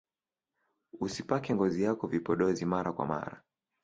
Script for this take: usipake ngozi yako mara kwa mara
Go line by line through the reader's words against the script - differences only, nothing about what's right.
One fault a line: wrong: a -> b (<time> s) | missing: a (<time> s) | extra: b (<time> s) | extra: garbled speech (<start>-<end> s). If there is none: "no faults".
extra: vipodozi (2.1 s)